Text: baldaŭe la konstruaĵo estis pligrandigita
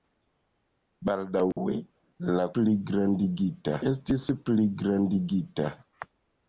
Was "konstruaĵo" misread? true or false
true